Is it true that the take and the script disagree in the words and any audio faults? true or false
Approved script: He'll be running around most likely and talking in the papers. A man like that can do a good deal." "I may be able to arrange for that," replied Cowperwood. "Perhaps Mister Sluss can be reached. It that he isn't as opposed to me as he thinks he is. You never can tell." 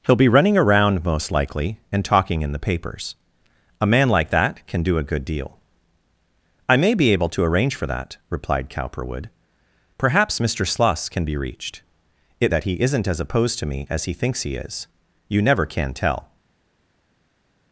false